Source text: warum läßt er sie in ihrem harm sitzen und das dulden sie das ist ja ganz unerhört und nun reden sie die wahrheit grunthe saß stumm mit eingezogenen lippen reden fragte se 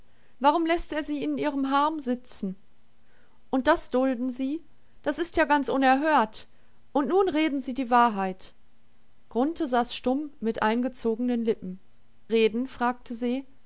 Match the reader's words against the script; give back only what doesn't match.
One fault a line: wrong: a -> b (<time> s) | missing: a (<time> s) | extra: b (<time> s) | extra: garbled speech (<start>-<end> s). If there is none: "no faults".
no faults